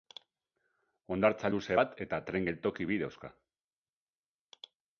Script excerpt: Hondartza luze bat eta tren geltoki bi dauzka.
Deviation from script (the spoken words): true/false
false